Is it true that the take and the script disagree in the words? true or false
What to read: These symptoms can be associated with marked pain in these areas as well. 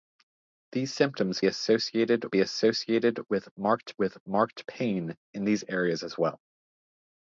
true